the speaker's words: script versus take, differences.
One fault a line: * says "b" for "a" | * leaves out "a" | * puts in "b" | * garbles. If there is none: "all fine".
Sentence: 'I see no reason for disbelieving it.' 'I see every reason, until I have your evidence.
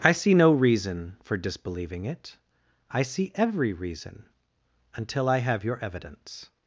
all fine